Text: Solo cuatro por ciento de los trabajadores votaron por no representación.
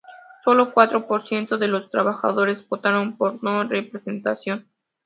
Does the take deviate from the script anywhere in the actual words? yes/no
no